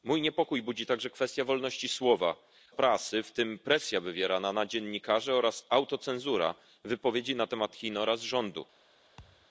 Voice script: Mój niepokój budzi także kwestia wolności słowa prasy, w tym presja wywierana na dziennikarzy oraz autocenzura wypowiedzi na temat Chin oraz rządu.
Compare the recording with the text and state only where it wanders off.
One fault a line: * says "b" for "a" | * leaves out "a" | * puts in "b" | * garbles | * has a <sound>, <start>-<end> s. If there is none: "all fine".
* has a thud, 9.2-9.5 s